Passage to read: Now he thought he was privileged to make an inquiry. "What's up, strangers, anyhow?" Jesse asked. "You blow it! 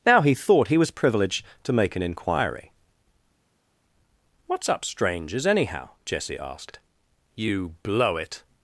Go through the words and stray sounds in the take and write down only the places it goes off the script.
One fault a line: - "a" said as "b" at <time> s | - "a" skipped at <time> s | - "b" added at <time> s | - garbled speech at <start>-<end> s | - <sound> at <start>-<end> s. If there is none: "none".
none